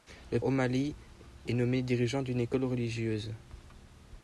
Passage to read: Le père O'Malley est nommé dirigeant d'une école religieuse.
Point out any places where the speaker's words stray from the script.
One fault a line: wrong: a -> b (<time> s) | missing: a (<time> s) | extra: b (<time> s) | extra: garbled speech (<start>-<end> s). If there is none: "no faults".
missing: père (0.4 s)